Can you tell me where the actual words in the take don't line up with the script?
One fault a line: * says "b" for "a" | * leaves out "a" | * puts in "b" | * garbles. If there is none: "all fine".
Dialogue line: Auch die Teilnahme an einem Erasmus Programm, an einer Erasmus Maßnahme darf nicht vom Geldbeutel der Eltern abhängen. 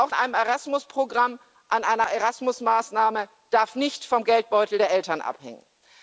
* leaves out "die Teilnahme an"